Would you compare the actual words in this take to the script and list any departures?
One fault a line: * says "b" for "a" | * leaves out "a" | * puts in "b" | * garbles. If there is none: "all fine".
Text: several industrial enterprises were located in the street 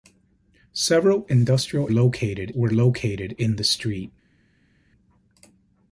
* says "located" for "enterprises"